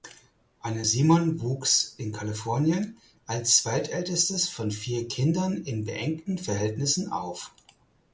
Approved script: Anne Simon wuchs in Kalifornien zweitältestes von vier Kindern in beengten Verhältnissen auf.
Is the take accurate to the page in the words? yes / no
no